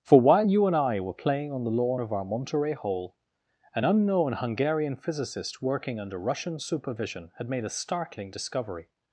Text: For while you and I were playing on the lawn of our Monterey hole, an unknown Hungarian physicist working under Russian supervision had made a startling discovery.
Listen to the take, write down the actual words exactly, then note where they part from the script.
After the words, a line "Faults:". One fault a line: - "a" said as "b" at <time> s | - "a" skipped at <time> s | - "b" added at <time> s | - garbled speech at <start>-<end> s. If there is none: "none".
For while you and I were playing on the lawn of our Monterey hole, an unknown Hungarian physicist working under Russian supervision had made a startling discovery.
Faults:
none